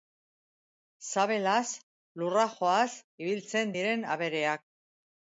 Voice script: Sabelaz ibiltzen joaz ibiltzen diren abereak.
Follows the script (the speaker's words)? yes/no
no